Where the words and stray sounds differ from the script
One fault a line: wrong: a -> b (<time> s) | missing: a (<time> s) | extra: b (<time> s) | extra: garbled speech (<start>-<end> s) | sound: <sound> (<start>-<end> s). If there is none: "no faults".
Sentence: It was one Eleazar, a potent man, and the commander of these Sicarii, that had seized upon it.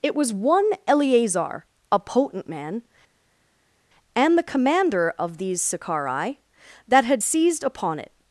no faults